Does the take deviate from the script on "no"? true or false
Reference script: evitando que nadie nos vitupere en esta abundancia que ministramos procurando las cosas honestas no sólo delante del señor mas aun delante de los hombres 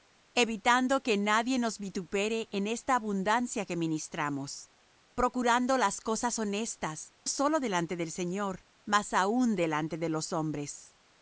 true